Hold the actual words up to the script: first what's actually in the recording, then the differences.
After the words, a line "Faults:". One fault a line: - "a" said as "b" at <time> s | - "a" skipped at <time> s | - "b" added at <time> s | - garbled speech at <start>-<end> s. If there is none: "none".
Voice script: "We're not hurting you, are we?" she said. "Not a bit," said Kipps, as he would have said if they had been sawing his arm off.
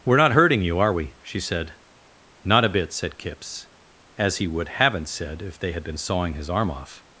"We're not hurting you, are we?" she said. "Not a bit," said Kipps, as he would haven't said if they had been sawing his arm off.
Faults:
- "have" said as "haven't" at 4.7 s